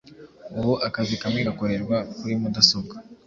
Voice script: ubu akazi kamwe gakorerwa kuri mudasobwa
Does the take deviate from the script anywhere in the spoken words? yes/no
no